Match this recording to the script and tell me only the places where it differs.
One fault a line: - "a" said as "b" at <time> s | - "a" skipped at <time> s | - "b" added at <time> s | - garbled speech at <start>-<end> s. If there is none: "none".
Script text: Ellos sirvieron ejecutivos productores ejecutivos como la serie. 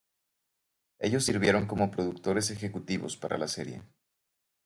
- "ejecutivos" said as "como" at 1.7 s
- "como" said as "para" at 3.2 s